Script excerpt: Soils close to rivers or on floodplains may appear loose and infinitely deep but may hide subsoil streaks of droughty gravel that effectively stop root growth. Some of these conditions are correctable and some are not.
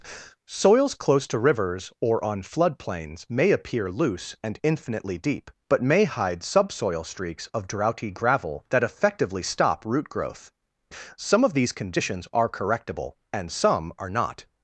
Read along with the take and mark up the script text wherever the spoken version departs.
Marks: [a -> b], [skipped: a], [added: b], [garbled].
Soils close to rivers or on floodplains may appear loose and infinitely deep but may hide subsoil streaks of droughty gravel that effectively stop root growth. Some of these conditions are correctable and some are not.